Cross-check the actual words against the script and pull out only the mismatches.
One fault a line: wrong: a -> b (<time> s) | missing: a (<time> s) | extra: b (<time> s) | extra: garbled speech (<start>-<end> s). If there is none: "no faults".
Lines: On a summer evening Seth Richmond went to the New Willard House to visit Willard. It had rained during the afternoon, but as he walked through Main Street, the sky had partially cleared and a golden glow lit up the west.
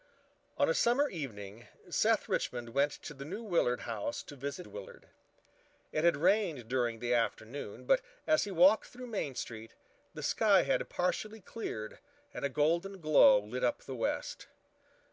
no faults